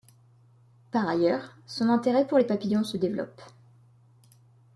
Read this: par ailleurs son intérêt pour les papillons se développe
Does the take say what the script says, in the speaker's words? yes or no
yes